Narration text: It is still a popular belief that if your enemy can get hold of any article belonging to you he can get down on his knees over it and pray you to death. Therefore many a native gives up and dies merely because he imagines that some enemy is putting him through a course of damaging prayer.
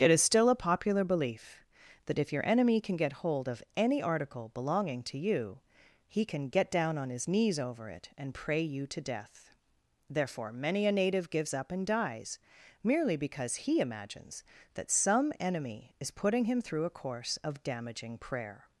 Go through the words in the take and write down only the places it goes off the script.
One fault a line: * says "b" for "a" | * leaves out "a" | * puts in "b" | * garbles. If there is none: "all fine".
all fine